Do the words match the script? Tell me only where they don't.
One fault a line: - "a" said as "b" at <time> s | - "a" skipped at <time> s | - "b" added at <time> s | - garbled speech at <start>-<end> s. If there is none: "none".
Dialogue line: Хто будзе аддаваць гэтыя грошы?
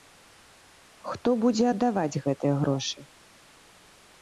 none